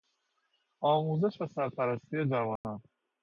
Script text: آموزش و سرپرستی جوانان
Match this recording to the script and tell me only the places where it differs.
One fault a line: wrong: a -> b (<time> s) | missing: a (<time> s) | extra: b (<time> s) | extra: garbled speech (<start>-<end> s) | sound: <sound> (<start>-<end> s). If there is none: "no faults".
sound: dropout (2.6-2.6 s)